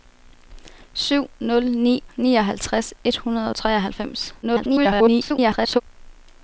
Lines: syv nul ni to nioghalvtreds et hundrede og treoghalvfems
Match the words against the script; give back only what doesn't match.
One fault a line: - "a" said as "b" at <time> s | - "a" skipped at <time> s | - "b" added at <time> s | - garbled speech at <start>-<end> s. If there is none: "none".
- "to" skipped at 2.0 s
- garbled speech at 4.4-5.8 s